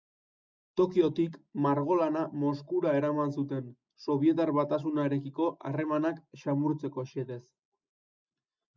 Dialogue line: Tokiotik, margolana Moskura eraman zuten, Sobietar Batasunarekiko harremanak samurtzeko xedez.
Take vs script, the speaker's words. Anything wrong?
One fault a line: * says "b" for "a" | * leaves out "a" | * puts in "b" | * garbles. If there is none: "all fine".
all fine